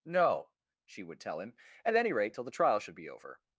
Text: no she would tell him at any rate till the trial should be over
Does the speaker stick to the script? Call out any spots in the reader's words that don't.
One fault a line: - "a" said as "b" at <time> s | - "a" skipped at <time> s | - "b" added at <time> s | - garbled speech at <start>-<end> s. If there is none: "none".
none